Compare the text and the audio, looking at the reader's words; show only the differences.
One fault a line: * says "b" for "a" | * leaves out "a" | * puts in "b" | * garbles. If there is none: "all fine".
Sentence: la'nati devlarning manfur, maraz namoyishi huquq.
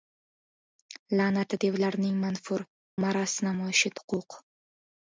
all fine